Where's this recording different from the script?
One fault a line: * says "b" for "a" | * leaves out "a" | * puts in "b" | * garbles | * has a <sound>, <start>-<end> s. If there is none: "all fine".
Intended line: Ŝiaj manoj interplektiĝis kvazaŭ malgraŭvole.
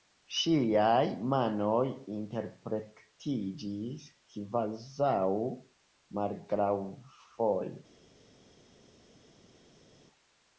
all fine